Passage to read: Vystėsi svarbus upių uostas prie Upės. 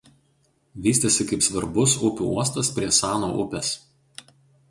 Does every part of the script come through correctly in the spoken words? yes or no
no